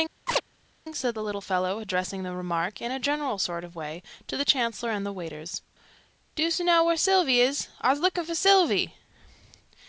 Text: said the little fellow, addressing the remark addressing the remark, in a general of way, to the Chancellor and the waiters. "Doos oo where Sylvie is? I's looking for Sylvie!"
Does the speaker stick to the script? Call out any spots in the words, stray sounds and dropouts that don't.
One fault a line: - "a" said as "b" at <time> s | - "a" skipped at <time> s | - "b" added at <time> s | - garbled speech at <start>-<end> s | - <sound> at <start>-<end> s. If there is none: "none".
- chirp at 0.3-0.4 s
- "addressing the remark" skipped at 2.8 s
- "sort" added at 3.4 s
- "know" added at 6.6 s